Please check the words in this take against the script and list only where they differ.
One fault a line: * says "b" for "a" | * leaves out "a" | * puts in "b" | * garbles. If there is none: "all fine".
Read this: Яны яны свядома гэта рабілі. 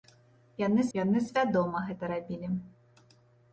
all fine